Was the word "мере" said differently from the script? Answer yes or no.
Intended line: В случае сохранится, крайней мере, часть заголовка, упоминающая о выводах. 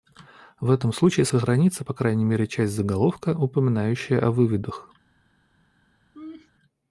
no